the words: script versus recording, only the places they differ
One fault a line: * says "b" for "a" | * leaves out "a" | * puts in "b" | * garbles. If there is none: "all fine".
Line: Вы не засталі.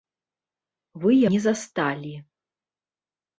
all fine